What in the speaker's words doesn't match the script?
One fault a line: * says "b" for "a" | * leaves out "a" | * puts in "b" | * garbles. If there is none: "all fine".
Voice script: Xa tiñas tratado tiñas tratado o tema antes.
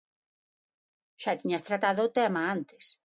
* leaves out "tiñas tratado"